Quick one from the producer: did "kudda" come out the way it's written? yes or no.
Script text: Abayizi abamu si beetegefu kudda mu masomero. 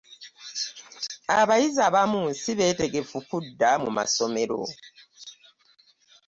yes